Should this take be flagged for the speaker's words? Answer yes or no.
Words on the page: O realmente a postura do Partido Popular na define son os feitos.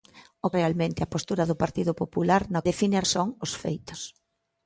no